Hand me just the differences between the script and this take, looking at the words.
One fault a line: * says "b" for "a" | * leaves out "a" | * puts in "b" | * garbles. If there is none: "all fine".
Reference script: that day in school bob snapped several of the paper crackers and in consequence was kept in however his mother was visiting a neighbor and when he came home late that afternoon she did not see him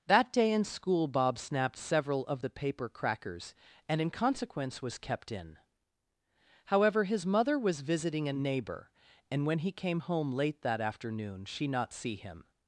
* leaves out "did"